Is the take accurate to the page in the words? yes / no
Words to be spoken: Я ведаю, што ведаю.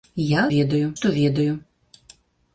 yes